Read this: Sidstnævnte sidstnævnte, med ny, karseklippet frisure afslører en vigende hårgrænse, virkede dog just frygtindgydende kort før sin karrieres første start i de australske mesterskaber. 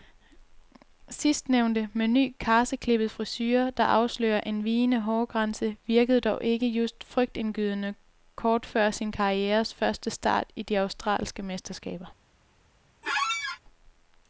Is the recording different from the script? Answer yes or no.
yes